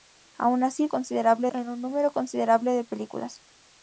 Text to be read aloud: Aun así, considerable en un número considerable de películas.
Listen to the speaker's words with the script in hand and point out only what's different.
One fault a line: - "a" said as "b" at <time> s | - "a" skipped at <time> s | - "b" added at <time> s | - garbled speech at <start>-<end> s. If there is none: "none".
none